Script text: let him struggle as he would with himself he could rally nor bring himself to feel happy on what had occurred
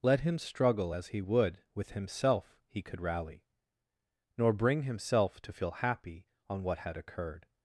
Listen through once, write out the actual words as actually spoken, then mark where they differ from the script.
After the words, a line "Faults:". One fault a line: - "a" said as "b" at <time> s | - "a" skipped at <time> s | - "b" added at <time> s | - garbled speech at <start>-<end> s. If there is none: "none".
let him struggle as he would with himself he could rally nor bring himself to feel happy on what had occurred
Faults:
none